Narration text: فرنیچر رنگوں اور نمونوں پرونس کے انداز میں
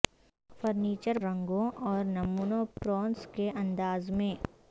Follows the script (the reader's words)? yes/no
yes